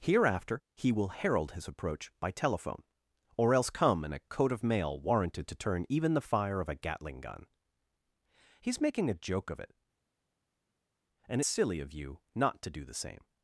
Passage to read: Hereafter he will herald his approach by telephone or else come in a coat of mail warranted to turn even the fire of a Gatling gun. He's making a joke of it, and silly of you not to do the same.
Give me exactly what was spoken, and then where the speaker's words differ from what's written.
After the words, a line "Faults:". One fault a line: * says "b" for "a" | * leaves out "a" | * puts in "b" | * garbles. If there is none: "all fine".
Hereafter he will herald his approach by telephone or else come in a coat of mail warranted to turn even the fire of a Gatling gun. He's making a joke of it, and silly of you not to do the same.
Faults:
all fine